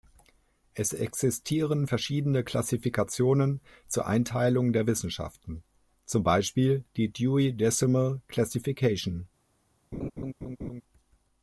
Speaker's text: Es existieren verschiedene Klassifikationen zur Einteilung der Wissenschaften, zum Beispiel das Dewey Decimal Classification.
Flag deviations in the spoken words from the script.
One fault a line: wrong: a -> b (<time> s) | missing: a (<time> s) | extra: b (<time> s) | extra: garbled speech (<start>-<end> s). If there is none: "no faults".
wrong: das -> die (7.0 s)